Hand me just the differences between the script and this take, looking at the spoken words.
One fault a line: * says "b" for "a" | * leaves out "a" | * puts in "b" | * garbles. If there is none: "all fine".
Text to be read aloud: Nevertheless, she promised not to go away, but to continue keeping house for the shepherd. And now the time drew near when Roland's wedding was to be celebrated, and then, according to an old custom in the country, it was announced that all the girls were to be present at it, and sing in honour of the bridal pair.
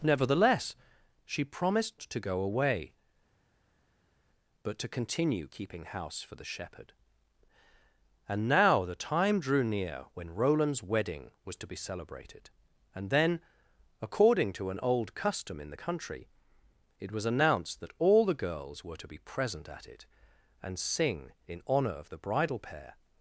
* leaves out "not"